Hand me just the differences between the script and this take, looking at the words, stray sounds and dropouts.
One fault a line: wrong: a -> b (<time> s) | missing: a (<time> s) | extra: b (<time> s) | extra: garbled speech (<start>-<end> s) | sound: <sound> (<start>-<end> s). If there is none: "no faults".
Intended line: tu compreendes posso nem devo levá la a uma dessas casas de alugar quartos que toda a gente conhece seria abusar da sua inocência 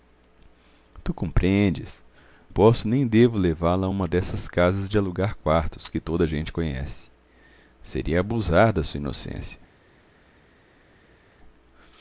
no faults